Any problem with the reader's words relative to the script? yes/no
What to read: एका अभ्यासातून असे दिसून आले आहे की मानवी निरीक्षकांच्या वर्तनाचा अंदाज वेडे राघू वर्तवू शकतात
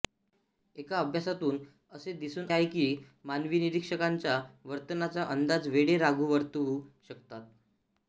yes